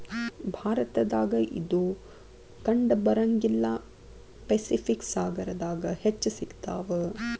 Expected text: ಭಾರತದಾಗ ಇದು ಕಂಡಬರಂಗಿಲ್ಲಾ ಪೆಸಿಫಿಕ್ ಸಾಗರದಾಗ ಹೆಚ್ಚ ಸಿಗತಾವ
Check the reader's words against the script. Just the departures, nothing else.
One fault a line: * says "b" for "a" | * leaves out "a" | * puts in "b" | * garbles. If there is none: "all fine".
all fine